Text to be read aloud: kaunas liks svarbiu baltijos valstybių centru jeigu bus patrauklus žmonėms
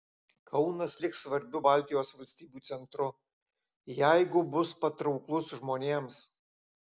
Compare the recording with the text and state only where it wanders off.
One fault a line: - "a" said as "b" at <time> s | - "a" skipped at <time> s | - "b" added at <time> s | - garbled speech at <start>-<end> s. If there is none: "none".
none